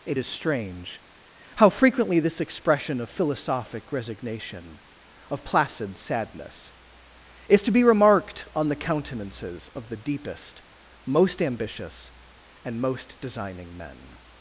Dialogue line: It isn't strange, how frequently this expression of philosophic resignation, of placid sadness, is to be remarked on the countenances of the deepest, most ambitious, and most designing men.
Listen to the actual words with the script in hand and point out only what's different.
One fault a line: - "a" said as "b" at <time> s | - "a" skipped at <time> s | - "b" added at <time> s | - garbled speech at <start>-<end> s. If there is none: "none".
- "isn't" said as "is" at 0.1 s